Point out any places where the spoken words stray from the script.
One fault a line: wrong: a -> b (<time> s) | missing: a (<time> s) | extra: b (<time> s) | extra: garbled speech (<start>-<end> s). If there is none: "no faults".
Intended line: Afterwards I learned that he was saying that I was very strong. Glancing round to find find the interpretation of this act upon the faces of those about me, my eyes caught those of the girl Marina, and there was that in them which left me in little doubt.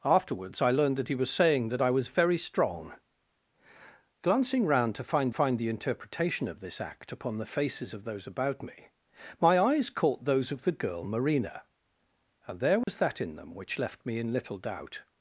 no faults